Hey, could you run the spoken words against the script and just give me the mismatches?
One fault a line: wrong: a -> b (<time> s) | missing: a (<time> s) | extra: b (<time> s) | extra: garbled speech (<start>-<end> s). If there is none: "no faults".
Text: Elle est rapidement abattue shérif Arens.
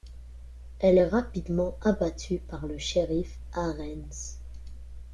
extra: par le (2.4 s)